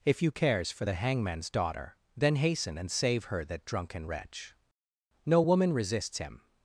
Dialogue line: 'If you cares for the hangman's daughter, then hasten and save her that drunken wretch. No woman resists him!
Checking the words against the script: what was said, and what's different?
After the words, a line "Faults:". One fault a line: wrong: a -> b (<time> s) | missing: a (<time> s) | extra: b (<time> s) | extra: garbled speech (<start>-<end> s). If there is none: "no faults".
'If you cares for the hangman's daughter, then hasten and save her that drunken wretch. No woman resists him!
Faults:
no faults